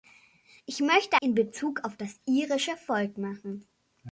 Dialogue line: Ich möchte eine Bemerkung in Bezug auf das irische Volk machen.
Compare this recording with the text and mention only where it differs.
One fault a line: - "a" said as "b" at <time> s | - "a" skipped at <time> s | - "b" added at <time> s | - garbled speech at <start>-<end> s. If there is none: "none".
- "eine Bemerkung" skipped at 1.2 s